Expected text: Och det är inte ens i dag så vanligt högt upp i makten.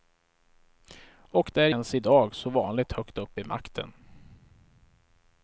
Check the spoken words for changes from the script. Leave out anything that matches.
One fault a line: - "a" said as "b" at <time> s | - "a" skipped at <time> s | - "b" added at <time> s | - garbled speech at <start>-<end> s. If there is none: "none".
- "inte" skipped at 1.7 s